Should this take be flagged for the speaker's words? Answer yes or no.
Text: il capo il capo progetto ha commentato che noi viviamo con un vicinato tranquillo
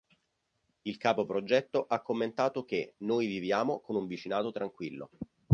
yes